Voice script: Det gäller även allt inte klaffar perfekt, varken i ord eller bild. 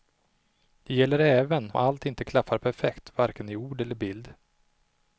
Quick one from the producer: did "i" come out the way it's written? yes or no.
yes